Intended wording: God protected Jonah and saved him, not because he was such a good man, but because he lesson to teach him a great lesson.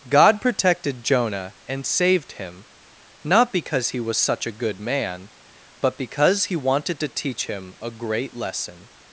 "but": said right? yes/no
yes